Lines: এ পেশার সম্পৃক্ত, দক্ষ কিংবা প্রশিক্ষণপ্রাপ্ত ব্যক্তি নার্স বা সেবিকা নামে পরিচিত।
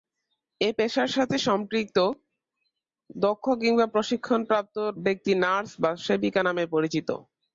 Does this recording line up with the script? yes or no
no